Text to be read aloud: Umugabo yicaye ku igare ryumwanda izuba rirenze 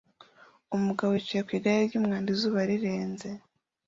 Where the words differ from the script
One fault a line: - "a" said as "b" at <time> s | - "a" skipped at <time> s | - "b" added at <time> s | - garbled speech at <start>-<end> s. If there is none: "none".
none